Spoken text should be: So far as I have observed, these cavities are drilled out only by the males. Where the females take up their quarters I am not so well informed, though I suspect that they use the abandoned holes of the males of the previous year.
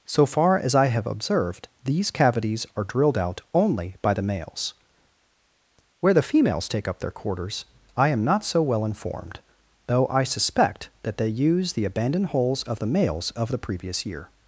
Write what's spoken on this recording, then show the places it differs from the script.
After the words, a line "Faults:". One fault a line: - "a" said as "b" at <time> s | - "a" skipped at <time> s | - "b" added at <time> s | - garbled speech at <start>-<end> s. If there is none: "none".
So far as I have observed, these cavities are drilled out only by the males. Where the females take up their quarters I am not so well informed, though I suspect that they use the abandoned holes of the males of the previous year.
Faults:
none